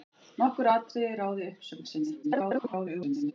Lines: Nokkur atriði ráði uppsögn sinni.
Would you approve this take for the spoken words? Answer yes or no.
no